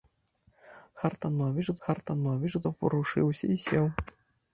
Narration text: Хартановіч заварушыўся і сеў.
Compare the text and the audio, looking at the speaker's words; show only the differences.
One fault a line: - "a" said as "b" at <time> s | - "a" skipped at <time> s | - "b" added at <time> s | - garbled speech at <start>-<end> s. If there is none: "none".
- "хартановіч" added at 1.9 s